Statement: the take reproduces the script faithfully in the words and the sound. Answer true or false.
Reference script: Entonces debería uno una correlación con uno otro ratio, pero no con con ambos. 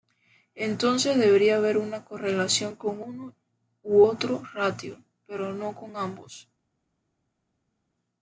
false